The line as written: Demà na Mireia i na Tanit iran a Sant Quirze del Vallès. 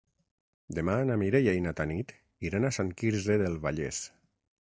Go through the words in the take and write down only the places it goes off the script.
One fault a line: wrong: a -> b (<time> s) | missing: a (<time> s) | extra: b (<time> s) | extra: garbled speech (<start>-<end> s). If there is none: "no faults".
no faults